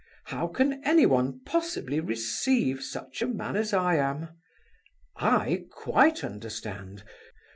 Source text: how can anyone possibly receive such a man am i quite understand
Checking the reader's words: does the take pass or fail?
fail